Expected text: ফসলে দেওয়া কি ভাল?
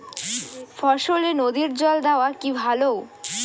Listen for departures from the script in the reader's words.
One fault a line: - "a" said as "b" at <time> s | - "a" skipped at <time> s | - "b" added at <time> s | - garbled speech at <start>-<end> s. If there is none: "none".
- "নদীর জল" added at 1.4 s